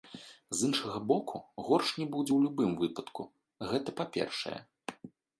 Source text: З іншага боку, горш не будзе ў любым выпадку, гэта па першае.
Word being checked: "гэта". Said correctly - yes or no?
yes